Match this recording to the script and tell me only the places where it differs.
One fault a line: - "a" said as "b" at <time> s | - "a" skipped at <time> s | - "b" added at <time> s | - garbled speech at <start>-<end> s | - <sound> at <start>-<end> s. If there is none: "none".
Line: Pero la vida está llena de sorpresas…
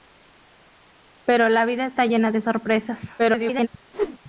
- garbled speech at 3.2-3.7 s
- whoosh at 3.9-4.2 s